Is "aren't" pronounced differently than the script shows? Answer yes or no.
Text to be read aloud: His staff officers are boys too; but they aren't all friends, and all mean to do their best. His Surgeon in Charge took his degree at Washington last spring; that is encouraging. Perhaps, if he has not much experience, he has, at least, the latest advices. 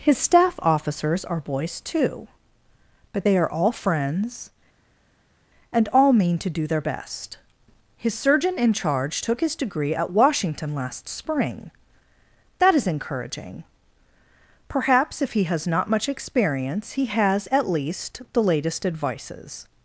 yes